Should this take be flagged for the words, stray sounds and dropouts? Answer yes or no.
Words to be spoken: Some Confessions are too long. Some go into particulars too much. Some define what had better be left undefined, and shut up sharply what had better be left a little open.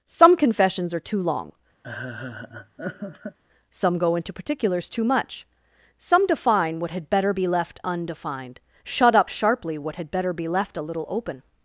yes